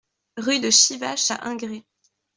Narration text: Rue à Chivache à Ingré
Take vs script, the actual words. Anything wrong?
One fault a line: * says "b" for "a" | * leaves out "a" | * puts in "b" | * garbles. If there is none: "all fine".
* says "de" for "à"